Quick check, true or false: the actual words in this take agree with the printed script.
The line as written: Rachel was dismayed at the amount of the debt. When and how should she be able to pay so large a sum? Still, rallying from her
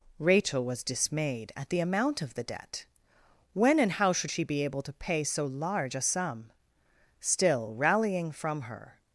true